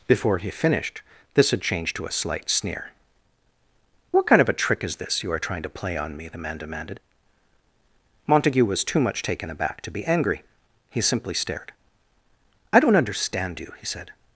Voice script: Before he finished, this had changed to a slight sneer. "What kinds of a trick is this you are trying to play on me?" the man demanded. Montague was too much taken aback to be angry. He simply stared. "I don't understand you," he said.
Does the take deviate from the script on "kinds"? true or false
true